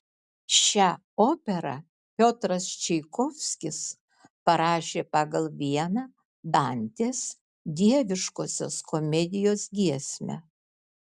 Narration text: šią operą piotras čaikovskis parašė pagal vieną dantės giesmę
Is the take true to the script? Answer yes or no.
no